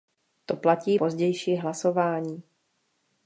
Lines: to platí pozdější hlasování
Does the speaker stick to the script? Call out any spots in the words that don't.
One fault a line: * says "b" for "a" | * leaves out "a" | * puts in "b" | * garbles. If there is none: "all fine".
all fine